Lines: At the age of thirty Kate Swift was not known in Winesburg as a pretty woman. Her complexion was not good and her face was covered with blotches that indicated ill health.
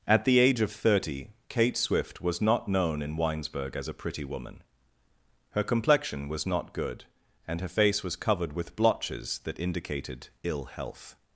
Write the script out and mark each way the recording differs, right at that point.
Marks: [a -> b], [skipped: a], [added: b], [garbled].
At the age of thirty Kate Swift was not known in Winesburg as a pretty woman. Her complexion was not good and her face was covered with blotches that indicated ill health.